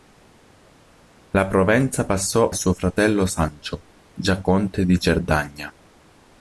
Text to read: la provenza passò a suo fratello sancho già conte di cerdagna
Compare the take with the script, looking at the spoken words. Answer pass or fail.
fail